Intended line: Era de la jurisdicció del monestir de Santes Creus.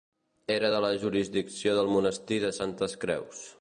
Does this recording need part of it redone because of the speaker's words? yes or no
no